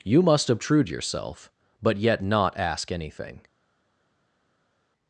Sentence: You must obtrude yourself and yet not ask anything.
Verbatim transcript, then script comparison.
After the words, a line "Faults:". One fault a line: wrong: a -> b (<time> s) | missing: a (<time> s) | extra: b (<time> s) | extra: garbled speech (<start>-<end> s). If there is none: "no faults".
You must obtrude yourself but yet not ask anything.
Faults:
wrong: and -> but (1.8 s)